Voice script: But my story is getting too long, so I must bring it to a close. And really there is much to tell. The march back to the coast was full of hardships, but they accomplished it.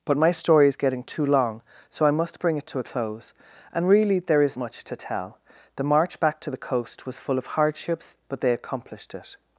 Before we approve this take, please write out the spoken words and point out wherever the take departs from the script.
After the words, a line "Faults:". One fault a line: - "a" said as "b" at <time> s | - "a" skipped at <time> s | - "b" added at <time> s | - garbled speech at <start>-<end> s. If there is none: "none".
But my story is getting too long, so I must bring it to a close. And really there is much to tell. The march back to the coast was full of hardships, but they accomplished it.
Faults:
none